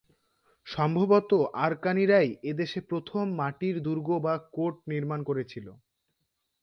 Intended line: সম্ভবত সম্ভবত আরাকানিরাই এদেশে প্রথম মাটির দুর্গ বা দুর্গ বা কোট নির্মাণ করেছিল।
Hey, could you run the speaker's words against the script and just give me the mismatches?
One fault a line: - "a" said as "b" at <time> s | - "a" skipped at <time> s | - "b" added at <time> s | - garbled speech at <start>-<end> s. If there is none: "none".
- "সম্ভবত" skipped at 1.3 s
- "দুর্গ বা" skipped at 4.3 s